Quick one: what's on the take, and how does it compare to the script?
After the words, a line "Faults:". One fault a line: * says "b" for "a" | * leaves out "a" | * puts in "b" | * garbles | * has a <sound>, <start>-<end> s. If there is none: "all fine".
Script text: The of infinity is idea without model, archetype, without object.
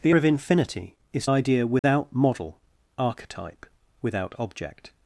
The of infinity is idea without model, archetype, without object.
Faults:
* has a dropout, 1.8-1.8 s